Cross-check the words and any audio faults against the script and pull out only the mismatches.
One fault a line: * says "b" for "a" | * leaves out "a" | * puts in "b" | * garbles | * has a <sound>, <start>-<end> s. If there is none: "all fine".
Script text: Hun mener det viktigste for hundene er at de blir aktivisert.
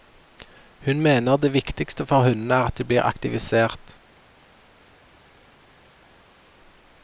all fine